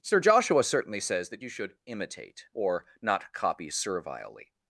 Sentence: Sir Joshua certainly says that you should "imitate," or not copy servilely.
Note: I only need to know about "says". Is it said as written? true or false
true